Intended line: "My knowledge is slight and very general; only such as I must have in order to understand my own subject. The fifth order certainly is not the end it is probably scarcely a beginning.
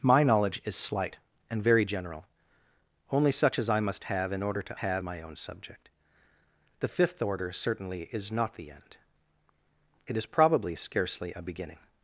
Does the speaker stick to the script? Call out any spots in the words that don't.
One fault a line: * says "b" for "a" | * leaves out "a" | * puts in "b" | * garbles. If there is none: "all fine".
* says "have" for "understand"